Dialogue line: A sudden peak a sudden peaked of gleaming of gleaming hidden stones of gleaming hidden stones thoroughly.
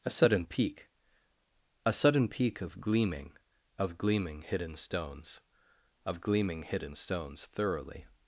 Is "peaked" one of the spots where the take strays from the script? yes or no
yes